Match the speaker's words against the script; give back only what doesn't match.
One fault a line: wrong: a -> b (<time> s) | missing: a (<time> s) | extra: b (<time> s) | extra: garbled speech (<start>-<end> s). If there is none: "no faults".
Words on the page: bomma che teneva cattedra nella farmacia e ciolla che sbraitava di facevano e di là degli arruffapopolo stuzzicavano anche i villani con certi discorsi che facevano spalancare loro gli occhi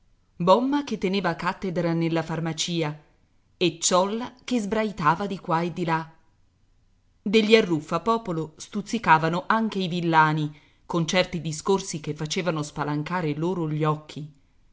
wrong: facevano -> qua (5.4 s)